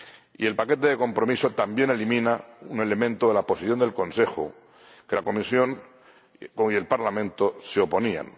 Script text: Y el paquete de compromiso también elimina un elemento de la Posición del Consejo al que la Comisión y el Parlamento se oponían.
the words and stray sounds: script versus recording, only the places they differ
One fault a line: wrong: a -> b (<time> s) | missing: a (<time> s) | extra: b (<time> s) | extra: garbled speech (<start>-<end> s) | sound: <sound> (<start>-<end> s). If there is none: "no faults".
no faults